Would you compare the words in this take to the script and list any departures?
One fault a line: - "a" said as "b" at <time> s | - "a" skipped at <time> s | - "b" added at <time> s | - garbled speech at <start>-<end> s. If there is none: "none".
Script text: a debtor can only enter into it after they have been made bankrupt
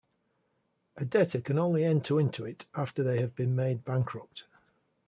none